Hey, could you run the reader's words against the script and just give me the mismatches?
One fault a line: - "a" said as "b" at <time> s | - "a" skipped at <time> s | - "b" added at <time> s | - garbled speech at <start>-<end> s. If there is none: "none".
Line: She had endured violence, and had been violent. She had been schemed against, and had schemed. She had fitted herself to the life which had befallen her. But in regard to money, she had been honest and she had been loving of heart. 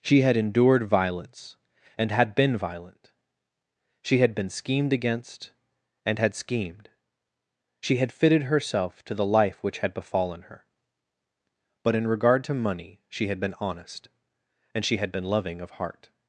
none